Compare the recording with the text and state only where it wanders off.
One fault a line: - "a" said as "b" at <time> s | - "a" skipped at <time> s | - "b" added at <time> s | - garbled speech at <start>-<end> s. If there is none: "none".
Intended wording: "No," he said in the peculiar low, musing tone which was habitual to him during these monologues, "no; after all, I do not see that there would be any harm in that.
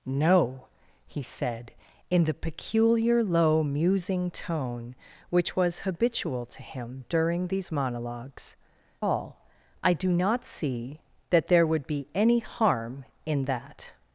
- "no after" skipped at 8.6 s